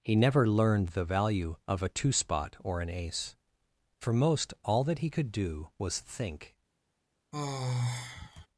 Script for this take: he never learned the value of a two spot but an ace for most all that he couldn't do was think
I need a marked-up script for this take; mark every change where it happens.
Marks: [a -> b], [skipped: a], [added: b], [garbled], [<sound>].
he never learned the value of a two spot [but -> or] an ace for most all that he [couldn't -> could] do was think [sigh]